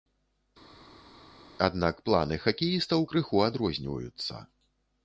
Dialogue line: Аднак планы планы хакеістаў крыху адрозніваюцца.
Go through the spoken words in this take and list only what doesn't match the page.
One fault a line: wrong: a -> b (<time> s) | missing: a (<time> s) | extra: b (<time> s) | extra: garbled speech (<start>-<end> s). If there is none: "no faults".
missing: планы (2.4 s)